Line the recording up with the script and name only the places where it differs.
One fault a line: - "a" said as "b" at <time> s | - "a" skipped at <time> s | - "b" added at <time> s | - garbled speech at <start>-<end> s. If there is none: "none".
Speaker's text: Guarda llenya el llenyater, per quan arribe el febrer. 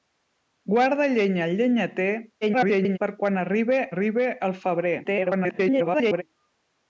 - garbled speech at 2.4-3.0 s
- "arribe" added at 3.9 s
- garbled speech at 5.0-6.2 s